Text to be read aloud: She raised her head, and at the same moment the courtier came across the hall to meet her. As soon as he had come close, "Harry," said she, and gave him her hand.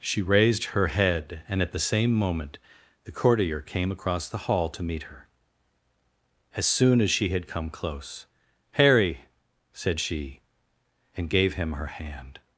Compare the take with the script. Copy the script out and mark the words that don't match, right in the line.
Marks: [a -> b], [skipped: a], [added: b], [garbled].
She raised her head, and at the same moment the courtier came across the hall to meet her. As soon as [he -> she] had come close, "Harry," said she, and gave him her hand.